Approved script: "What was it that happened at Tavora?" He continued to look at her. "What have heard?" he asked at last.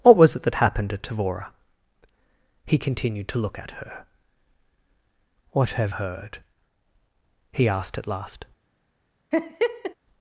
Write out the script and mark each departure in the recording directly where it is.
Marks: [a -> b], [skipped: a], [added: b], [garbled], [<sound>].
"What was it that happened at Tavora?" He continued to look at her. "What have heard?" he asked at last. [laugh]